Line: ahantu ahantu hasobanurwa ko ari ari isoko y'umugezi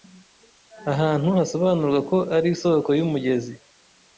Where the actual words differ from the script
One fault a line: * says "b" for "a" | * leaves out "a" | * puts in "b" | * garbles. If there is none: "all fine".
* leaves out "ahantu"
* leaves out "ari"